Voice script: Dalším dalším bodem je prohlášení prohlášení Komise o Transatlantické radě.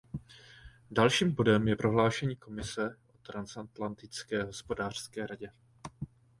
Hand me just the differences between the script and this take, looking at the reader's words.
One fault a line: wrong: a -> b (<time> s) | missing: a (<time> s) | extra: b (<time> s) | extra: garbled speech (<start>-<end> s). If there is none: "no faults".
missing: dalším (1.3 s)
missing: prohlášení (2.4 s)
extra: hospodářské (4.4 s)